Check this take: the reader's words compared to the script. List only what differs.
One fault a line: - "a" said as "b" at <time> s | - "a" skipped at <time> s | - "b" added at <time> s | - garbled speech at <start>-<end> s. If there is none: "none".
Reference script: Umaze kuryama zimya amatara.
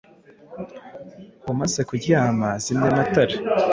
none